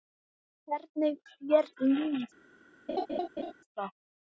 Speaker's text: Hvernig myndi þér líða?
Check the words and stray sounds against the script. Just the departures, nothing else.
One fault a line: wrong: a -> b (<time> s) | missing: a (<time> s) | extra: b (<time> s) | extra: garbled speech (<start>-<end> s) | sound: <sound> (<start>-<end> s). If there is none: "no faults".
missing: myndi (1.2 s)
sound: laugh (2.9-3.5 s)